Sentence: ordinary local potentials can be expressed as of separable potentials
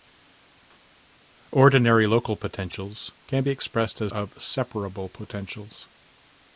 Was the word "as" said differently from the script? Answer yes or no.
no